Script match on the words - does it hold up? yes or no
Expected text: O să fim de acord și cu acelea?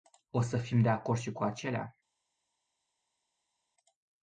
yes